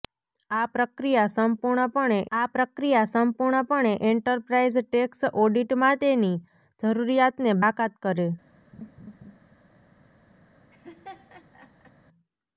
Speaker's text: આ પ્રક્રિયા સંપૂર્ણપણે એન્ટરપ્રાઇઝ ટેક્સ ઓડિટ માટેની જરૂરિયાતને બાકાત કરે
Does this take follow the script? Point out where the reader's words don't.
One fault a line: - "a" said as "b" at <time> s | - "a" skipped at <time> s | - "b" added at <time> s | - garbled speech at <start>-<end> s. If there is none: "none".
- "આ પ્રક્રિયા સંપૂર્ણપણે" added at 2.3 s